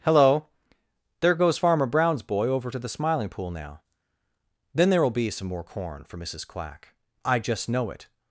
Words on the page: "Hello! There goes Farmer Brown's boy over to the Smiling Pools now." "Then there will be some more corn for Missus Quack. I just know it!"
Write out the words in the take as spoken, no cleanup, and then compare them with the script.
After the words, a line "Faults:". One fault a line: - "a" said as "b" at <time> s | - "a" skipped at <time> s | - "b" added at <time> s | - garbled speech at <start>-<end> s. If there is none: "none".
"Hello! There goes Farmer Brown's boy over to the Smiling Pool now." "Then there will be some more corn for Missus Quack. I just know it!"
Faults:
- "Pools" said as "Pool" at 3.3 s